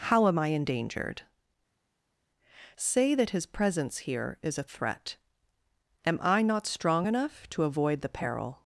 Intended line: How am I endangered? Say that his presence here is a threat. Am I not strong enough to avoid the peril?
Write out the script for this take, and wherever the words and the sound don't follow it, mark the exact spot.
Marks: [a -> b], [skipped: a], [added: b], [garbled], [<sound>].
How am I endangered? Say that his presence here is a threat. Am I not strong enough to avoid the peril?